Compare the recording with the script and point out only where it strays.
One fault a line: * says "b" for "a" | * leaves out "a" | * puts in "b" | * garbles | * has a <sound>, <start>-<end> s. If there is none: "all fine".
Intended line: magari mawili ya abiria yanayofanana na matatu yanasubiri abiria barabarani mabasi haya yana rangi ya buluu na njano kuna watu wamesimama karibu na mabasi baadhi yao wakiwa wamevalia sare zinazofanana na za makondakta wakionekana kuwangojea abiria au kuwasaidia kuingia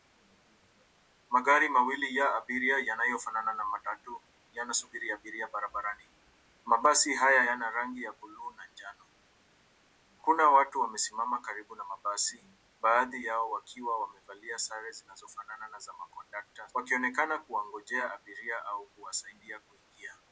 all fine